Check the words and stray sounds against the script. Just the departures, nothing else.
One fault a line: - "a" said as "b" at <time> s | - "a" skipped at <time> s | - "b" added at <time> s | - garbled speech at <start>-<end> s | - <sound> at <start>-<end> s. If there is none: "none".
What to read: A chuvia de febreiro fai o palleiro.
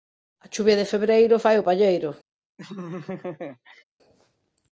- laugh at 2.6-3.8 s